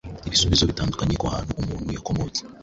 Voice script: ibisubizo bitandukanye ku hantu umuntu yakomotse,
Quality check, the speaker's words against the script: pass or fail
pass